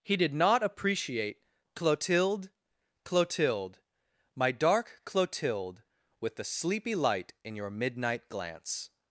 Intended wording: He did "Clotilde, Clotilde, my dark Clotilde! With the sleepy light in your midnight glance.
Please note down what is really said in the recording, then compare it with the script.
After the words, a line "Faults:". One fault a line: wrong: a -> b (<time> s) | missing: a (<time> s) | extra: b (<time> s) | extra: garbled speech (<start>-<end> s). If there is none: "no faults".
He did not appreciate "Clotilde, Clotilde, my dark Clotilde! With the sleepy light in your midnight glance.
Faults:
extra: not appreciate (0.3 s)